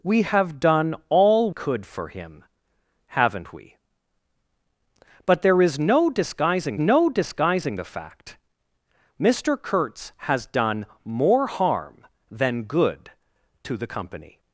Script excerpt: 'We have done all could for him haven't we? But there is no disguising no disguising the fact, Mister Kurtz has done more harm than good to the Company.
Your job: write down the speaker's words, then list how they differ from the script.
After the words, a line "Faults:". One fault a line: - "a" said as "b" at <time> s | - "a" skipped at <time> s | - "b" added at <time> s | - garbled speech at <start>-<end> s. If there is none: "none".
'We have done all could for him haven't we? But there is no disguising no disguising the fact, Mister Kurtz has done more harm than good to the Company.
Faults:
none